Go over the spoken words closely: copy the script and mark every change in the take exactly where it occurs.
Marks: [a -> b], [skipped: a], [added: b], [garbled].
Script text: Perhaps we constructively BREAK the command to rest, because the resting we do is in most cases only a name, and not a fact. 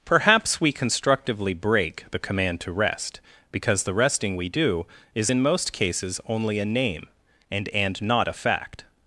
Perhaps we constructively BREAK the command to rest, because the resting we do is in most cases only a name, and [added: and] not a fact.